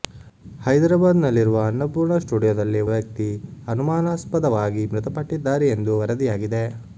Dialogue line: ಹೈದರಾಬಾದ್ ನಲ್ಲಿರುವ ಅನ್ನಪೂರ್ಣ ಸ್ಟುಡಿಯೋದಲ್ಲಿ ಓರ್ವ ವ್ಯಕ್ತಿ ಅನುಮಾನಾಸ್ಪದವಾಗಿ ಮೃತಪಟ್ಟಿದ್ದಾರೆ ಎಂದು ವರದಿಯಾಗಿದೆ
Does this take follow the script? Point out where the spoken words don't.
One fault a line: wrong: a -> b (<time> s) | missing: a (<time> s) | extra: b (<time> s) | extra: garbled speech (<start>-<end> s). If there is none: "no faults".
missing: ಓರ್ವ (2.8 s)